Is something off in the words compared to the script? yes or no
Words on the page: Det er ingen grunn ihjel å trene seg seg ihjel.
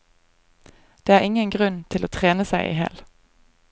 yes